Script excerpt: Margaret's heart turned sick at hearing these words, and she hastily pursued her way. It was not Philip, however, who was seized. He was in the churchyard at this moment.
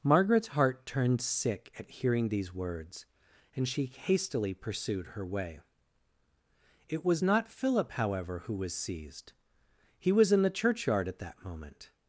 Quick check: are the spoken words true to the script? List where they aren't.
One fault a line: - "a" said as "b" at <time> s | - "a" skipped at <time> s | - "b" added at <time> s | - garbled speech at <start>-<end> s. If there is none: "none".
- "this" said as "that" at 11.2 s